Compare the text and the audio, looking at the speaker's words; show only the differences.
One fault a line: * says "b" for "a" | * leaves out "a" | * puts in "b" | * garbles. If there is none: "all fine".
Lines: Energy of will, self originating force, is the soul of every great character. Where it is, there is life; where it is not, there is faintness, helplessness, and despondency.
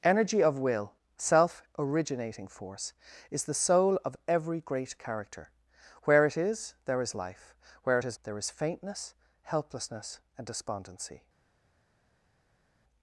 * leaves out "not"